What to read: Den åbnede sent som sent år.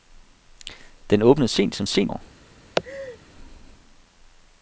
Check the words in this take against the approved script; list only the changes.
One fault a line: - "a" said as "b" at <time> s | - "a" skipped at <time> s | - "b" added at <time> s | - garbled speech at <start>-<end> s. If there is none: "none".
none